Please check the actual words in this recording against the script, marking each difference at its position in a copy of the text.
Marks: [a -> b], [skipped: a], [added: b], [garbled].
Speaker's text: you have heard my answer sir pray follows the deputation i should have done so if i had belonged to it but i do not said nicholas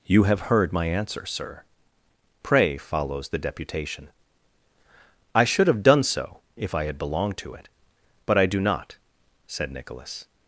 you have heard my answer sir pray follows the deputation i should have done so if i had belonged to it but i do not said nicholas